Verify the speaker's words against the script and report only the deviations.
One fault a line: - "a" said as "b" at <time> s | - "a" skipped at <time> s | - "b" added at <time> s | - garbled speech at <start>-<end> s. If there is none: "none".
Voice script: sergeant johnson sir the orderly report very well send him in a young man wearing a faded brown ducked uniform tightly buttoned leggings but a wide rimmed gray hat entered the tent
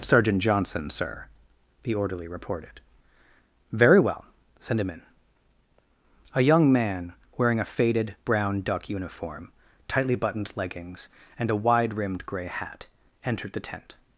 - "report" said as "reported" at 2.3 s
- "ducked" said as "duck" at 8.6 s
- "but" said as "and" at 11.4 s